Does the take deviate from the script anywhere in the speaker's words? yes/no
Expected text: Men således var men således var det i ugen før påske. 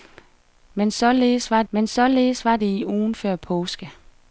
no